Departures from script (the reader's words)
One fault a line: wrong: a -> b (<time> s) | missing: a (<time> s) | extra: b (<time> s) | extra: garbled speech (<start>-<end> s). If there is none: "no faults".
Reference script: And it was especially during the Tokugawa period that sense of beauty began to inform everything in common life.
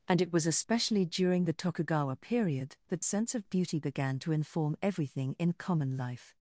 no faults